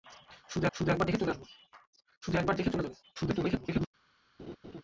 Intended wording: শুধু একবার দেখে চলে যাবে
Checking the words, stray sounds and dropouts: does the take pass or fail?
fail